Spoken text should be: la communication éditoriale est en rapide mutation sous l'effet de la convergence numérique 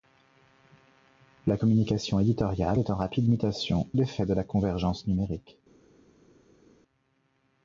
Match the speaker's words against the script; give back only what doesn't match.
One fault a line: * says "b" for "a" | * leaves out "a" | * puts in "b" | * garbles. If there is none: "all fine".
* leaves out "sous"